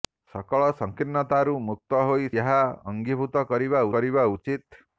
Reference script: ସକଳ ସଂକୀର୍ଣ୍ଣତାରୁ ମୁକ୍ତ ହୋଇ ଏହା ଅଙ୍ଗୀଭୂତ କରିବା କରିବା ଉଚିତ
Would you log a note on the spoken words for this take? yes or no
no